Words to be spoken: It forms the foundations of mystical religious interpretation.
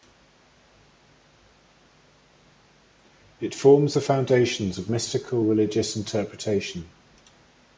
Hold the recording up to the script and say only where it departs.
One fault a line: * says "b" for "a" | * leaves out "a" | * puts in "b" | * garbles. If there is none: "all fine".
all fine